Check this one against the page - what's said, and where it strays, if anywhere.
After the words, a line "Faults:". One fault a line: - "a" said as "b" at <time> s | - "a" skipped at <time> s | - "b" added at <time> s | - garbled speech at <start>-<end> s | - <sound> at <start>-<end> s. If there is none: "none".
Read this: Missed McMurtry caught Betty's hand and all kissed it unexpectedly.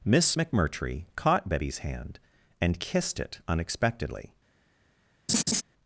Miss McMurtry caught Betty's hand and kissed it unexpectedly.
Faults:
- "Missed" said as "Miss" at 0.0 s
- "all" skipped at 2.8 s
- laugh at 5.3-5.6 s